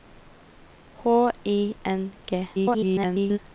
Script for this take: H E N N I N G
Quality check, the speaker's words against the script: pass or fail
fail